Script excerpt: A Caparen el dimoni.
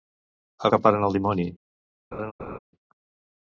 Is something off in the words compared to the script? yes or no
no